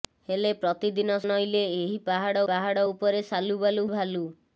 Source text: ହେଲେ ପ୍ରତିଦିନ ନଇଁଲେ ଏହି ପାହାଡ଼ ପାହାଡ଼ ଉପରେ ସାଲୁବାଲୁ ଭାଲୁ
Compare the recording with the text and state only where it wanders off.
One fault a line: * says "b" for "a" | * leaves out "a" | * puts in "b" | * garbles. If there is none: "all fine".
all fine